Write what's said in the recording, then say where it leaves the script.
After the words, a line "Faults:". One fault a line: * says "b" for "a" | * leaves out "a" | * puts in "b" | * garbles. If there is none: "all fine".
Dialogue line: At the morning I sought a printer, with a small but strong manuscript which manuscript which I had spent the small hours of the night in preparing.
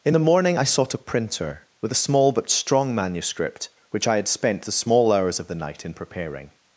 In the morning I sought a printer, with a small but strong manuscript which I had spent the small hours of the night in preparing.
Faults:
* says "In" for "At"
* leaves out "manuscript which"